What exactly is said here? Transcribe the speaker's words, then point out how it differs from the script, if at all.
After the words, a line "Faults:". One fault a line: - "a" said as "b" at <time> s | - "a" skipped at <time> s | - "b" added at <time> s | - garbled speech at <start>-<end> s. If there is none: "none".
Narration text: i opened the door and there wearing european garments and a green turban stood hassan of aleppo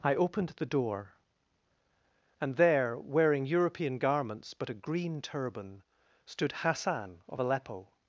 i opened the door and there wearing european garments but a green turban stood hassan of aleppo
Faults:
- "and" said as "but" at 4.5 s